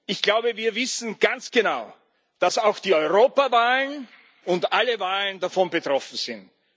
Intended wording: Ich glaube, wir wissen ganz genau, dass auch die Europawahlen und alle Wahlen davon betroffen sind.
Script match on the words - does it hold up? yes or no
yes